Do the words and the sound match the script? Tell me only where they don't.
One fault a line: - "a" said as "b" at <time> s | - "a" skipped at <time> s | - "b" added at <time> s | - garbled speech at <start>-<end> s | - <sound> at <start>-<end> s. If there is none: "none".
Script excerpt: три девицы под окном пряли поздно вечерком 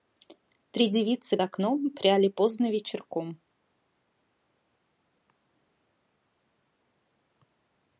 - "под" skipped at 1.4 s